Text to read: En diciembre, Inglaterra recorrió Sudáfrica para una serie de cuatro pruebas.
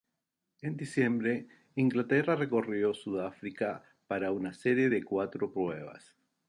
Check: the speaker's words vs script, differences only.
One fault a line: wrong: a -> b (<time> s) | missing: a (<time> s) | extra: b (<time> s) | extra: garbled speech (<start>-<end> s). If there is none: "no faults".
no faults